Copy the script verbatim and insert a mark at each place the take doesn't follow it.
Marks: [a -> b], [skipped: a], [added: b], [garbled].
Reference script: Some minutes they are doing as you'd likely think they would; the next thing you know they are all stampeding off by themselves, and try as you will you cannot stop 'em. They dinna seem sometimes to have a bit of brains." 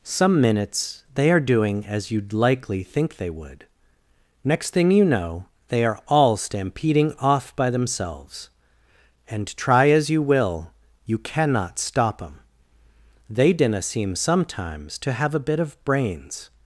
Some minutes they are doing as you'd likely think they would; [skipped: the] next thing you know they are all stampeding off by themselves, and try as you will you cannot stop 'em. They dinna seem sometimes to have a bit of brains."